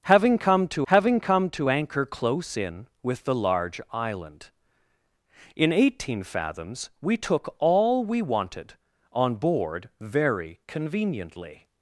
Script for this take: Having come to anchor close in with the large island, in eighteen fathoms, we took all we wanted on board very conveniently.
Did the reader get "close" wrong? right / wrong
right